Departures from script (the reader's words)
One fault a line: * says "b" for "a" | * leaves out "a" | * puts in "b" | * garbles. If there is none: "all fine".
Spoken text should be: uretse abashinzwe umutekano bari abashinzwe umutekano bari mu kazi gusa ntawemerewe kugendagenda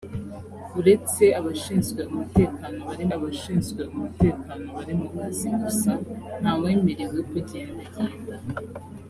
all fine